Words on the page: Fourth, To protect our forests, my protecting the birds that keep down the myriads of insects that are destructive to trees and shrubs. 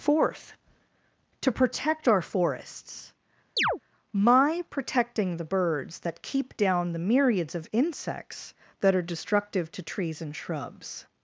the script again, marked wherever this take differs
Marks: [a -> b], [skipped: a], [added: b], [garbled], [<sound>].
Fourth, To protect our forests, [chirp] my protecting the birds that keep down the myriads of insects that are destructive to trees and shrubs.